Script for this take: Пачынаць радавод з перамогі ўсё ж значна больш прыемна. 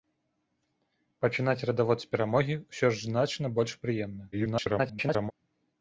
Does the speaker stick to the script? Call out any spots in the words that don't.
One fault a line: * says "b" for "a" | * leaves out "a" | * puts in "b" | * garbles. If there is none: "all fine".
* garbles